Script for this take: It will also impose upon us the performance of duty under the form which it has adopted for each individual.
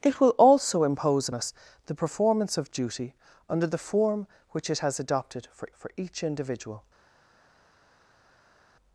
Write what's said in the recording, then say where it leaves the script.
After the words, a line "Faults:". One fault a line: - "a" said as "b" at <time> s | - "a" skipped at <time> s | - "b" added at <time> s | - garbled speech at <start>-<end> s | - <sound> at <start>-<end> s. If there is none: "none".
It will also impose us the performance of duty under the form which it has adopted for for each individual.
Faults:
- "upon" skipped at 1.3 s
- "for" added at 5.8 s